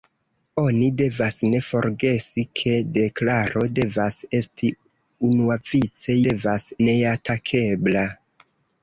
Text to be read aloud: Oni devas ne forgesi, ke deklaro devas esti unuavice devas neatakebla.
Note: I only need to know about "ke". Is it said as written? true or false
true